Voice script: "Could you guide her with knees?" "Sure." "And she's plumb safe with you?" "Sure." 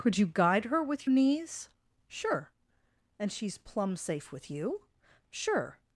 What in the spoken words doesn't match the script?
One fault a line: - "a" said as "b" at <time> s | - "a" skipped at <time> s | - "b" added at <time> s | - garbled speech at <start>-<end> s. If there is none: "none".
none